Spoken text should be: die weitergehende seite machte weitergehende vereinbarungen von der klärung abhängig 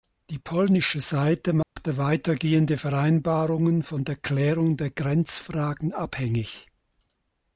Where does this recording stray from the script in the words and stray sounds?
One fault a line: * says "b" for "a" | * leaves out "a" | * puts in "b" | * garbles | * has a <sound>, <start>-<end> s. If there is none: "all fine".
* says "polnische" for "weitergehende"
* has a dropout, 1.6-1.8 s
* puts in "der grenzfragen"